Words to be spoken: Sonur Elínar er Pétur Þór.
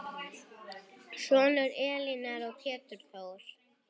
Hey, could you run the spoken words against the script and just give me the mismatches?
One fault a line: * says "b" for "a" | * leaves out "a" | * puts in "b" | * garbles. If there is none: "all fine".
all fine